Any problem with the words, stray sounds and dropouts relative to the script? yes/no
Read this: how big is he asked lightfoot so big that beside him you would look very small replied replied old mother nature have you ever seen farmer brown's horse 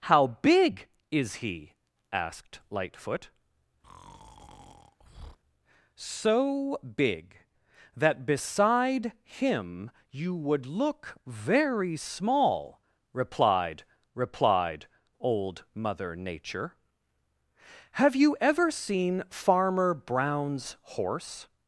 yes